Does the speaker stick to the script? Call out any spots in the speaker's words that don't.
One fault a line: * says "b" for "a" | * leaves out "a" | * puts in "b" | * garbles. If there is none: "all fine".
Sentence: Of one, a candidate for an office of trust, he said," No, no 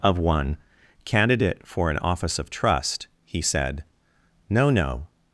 * leaves out "a"